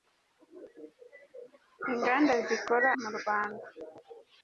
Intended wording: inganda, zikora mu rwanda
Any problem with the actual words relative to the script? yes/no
no